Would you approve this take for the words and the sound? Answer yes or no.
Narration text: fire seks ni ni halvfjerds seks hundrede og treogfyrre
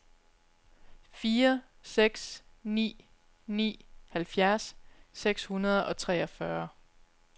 yes